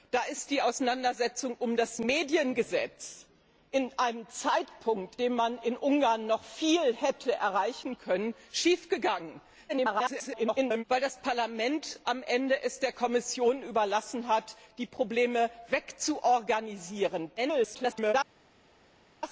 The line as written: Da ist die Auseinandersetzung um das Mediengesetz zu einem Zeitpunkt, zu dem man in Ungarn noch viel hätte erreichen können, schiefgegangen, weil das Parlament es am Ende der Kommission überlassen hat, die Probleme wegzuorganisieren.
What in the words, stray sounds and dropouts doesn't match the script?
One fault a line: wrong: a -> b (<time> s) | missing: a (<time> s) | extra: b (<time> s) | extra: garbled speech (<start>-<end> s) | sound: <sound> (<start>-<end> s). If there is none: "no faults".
missing: zu (5.2 s)
extra: garbled speech (9.7-10.8 s)
extra: garbled speech (17.4-18.1 s)